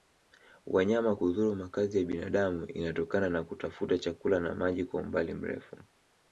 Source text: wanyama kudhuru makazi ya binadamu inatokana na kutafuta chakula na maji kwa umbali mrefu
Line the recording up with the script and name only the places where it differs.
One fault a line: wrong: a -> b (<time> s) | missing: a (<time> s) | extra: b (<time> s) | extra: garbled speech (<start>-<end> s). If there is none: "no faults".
no faults